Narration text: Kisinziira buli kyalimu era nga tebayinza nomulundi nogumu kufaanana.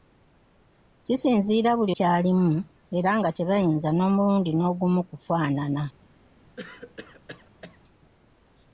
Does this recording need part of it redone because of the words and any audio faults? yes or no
yes